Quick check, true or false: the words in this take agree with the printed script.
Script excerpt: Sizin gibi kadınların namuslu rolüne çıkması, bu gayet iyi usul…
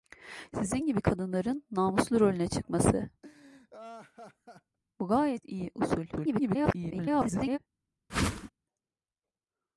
false